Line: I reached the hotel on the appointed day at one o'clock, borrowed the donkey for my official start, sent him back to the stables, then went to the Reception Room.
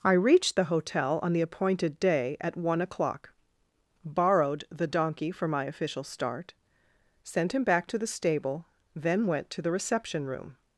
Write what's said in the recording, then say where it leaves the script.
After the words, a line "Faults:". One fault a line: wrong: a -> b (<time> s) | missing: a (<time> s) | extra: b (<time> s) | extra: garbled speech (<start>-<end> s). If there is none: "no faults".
I reached the hotel on the appointed day at one o'clock, borrowed the donkey for my official start, sent him back to the stable, then went to the Reception Room.
Faults:
wrong: stables -> stable (8.1 s)